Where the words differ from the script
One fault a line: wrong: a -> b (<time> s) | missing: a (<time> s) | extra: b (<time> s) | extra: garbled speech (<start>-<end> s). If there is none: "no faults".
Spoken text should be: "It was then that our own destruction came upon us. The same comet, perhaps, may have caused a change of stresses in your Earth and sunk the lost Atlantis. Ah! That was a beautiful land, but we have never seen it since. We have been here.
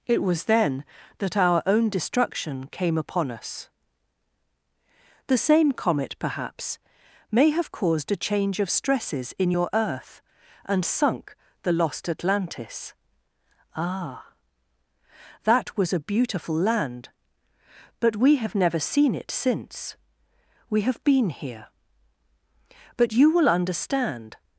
extra: But you will understand (23.0 s)